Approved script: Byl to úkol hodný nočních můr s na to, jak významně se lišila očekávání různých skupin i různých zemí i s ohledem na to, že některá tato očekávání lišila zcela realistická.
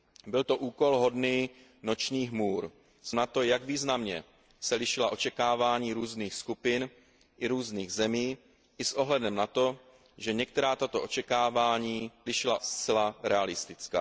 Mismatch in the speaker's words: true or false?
false